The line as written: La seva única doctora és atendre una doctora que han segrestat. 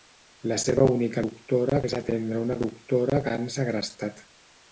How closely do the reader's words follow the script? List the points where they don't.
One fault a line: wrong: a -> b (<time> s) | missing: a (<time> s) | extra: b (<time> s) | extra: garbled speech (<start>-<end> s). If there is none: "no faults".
no faults